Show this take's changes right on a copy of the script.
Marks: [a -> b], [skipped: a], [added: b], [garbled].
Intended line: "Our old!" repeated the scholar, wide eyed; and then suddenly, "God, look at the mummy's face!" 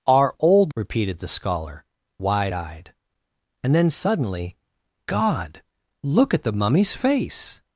"Our old!" repeated the scholar, wide eyed; and then suddenly, "God, look at the mummy's face!"